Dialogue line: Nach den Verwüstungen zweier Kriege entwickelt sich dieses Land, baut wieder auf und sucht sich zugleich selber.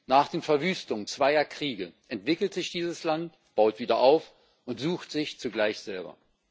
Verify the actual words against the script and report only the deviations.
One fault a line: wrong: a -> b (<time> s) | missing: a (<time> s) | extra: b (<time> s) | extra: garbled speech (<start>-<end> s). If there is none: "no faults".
no faults